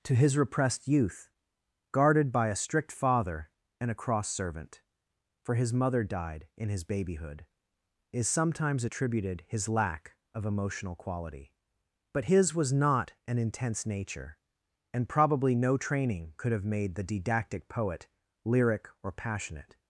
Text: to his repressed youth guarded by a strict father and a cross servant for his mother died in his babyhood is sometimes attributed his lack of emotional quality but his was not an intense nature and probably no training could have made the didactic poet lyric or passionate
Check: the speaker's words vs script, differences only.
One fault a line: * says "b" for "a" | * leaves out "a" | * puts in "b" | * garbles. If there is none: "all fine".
all fine